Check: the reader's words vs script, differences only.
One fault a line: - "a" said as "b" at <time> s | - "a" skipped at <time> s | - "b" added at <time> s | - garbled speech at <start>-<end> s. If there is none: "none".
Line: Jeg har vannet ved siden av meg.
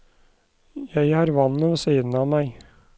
none